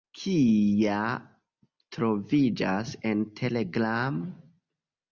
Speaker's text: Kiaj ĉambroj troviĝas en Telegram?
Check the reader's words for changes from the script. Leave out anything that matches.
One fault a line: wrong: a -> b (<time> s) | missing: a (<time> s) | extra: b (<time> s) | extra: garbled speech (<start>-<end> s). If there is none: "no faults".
missing: ĉambroj (1.0 s)